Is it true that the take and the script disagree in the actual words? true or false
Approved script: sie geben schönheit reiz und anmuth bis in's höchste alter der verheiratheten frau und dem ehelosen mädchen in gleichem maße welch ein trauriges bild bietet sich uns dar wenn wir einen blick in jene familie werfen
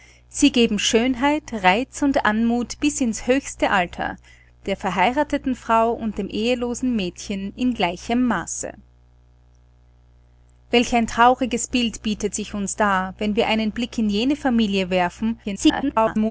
true